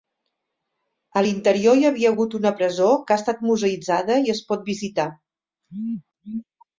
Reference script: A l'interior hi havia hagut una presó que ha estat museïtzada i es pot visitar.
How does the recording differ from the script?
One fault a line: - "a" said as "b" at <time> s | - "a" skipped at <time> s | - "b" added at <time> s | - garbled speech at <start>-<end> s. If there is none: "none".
none